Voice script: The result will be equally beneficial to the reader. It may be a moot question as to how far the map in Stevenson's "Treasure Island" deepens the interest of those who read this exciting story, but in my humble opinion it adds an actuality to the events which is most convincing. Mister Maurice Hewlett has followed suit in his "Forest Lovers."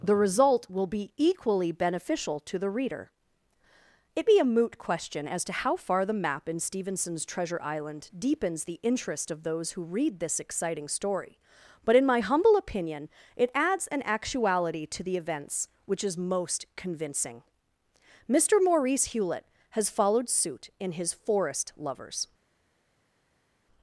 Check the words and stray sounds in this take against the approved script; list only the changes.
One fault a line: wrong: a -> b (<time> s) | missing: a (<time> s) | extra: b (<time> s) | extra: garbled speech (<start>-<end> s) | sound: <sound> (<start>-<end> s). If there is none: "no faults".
missing: may (4.3 s)